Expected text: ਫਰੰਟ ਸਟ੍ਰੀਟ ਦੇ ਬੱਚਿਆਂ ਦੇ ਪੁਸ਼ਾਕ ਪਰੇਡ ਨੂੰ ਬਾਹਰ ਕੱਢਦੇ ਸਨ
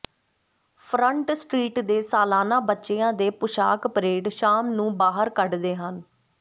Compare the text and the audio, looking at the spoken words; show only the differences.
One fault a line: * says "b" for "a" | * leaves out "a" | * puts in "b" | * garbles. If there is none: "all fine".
* puts in "ਸਾਲਾਨਾ"
* puts in "ਸ਼ਾਮ"
* says "ਹਨ" for "ਸਨ"